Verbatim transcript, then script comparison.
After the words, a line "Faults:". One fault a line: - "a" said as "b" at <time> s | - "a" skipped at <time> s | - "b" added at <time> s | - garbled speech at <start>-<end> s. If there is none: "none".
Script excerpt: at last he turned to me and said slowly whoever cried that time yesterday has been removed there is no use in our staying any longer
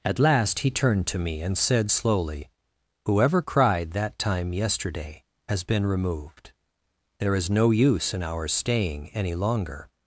at last he turned to me and said slowly whoever cried that time yesterday has been removed there is no use in our staying any longer
Faults:
none